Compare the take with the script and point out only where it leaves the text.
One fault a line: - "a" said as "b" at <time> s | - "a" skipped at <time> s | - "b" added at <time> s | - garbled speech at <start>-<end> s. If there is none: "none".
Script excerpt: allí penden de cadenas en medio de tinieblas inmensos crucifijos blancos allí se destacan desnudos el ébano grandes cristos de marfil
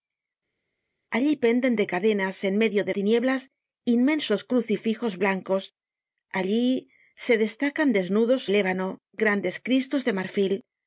none